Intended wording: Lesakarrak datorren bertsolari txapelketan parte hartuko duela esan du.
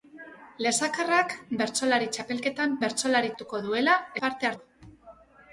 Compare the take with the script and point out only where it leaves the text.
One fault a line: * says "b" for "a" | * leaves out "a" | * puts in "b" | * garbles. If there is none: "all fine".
* leaves out "datorren"
* says "bertsolari" for "parte"
* says "parte" for "esan"